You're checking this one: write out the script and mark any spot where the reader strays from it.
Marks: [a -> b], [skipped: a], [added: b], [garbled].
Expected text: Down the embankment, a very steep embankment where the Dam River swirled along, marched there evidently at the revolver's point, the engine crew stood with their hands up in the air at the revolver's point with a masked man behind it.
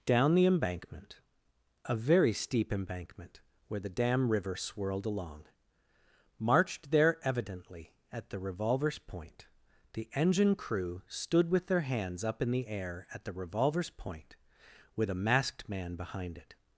Down the embankment, a very steep embankment where the Dam River swirled along, marched there evidently at the revolver's point, the engine crew stood with their hands up in the air at the revolver's point with a masked man behind it.